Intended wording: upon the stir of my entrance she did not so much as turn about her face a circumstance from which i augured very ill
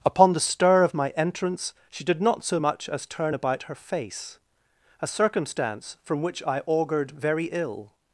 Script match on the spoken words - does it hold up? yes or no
yes